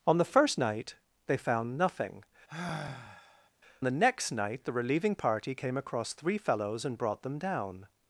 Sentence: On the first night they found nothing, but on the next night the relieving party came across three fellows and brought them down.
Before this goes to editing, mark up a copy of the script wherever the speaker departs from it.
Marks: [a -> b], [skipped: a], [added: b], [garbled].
On the first night they found nothing, [skipped: but on] the next night the relieving party came across three fellows and brought them down.